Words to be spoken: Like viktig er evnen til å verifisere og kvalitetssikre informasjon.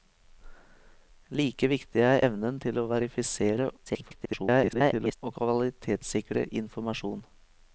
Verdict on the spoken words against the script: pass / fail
fail